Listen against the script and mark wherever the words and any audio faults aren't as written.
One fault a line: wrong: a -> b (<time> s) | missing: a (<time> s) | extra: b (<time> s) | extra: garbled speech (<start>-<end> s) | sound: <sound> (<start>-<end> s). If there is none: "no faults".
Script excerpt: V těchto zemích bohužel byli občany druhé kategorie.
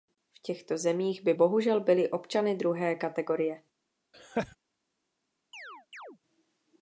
extra: by (1.2 s)
sound: laugh (4.1-4.6 s)
sound: chirp (5.5-6.2 s)